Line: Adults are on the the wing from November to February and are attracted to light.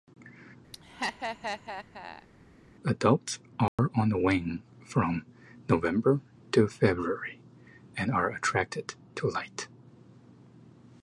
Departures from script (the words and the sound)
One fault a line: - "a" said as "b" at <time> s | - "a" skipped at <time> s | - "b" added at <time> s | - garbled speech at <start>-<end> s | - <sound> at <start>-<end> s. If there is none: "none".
- laugh at 0.7-2.3 s
- dropout at 3.7-3.8 s
- "the" skipped at 4.2 s